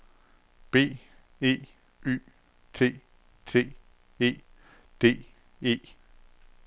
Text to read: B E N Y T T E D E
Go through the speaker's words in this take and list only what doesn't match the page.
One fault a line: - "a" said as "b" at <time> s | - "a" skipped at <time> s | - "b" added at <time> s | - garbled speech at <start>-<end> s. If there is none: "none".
- "N" skipped at 1.6 s